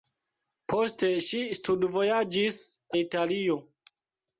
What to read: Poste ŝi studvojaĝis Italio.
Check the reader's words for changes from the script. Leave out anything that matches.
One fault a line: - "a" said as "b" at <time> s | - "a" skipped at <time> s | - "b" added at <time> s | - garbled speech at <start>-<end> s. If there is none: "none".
none